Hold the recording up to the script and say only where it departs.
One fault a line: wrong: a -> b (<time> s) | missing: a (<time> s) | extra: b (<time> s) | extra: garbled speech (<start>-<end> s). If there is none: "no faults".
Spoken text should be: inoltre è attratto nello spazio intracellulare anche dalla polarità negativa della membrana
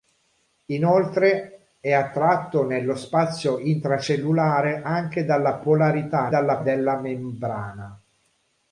wrong: negativa -> dalla (6.3 s)